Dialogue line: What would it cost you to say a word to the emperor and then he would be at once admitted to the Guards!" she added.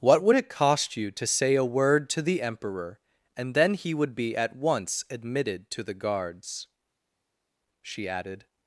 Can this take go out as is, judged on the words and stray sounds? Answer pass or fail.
pass